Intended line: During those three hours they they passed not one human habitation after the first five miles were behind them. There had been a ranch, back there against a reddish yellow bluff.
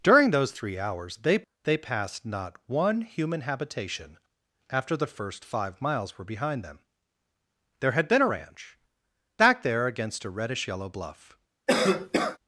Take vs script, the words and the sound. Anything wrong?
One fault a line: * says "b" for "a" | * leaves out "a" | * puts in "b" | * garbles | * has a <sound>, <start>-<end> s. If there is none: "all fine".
* has a cough, 11.7-12.4 s